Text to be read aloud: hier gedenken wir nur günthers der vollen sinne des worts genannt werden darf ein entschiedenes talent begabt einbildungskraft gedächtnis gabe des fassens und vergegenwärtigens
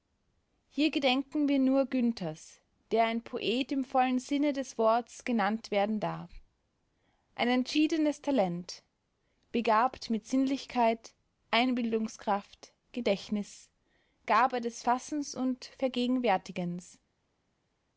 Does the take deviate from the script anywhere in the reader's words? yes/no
yes